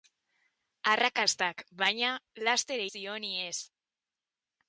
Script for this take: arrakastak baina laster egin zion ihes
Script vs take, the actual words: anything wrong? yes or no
yes